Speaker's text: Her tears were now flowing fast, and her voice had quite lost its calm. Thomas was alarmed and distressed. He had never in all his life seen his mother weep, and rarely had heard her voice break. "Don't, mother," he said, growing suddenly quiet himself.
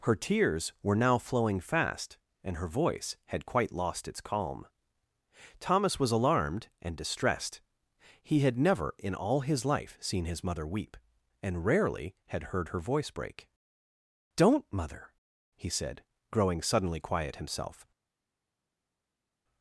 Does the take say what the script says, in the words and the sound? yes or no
yes